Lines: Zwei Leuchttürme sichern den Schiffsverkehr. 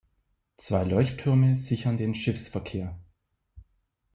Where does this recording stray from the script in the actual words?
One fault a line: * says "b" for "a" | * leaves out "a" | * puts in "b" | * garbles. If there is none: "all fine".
all fine